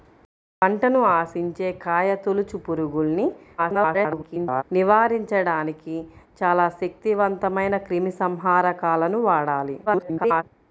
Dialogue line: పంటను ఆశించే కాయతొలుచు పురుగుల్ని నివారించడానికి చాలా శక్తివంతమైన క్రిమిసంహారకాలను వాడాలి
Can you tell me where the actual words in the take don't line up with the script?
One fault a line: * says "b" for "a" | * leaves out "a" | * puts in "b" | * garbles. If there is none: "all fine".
* garbles
* garbles